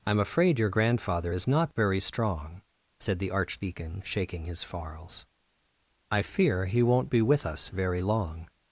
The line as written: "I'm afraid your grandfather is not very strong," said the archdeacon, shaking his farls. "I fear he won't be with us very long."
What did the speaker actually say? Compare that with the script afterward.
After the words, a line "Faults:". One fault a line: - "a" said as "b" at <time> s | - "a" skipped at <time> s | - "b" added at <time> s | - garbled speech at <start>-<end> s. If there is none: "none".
"I'm afraid your grandfather is not very strong," said the archdeacon, shaking his farls. "I fear he won't be with us very long."
Faults:
none